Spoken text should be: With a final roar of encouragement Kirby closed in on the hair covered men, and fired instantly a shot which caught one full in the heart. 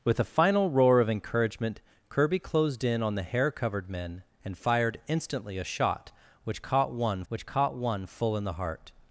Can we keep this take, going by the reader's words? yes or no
no